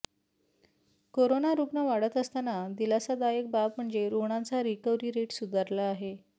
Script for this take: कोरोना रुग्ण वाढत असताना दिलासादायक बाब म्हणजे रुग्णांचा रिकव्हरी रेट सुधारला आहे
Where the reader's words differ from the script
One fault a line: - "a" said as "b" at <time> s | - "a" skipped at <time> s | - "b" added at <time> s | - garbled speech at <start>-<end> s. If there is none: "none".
none